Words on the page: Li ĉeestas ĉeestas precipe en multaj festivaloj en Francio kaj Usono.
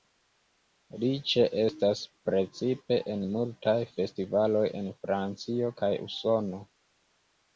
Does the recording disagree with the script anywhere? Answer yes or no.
yes